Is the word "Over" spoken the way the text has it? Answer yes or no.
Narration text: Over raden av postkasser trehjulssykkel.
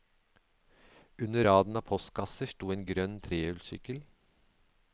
no